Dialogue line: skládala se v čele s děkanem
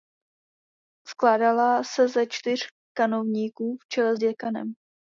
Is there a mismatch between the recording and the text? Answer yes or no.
yes